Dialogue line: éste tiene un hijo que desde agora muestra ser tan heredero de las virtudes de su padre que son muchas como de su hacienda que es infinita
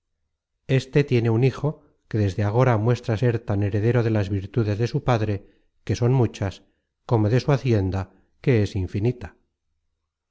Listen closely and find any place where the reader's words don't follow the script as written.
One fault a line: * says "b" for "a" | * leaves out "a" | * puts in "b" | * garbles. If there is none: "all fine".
all fine